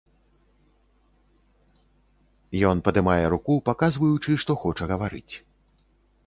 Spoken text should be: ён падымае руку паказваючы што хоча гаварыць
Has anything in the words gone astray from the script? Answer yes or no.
no